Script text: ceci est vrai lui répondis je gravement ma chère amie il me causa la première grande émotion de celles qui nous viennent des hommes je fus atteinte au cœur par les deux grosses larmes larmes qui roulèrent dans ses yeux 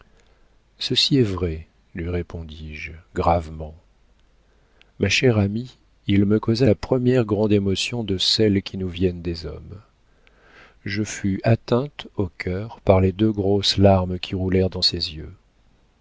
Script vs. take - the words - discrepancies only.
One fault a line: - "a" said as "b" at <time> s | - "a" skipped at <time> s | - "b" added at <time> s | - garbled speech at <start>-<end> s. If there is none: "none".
- "larmes" skipped at 14.2 s